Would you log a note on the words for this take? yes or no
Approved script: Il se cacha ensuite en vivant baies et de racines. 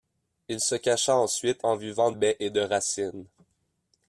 no